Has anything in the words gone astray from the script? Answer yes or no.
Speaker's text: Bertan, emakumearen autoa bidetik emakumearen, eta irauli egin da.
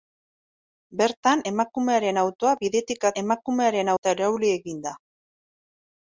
no